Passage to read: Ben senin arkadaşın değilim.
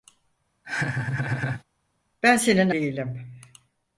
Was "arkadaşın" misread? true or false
true